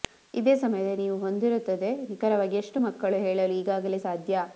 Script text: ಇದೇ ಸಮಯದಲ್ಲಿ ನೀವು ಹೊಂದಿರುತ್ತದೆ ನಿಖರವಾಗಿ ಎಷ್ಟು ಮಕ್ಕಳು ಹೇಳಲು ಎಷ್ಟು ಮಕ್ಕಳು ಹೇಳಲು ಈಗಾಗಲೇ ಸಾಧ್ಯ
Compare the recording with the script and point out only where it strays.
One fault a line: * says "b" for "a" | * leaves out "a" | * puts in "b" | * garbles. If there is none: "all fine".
* leaves out "ಎಷ್ಟು ಮಕ್ಕಳು ಹೇಳಲು"